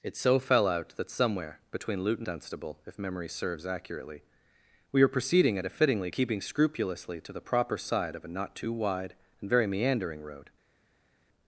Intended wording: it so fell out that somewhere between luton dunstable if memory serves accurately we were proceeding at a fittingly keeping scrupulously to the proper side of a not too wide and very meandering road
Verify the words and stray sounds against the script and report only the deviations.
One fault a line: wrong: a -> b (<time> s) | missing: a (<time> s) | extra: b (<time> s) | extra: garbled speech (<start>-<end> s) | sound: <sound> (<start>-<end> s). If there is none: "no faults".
no faults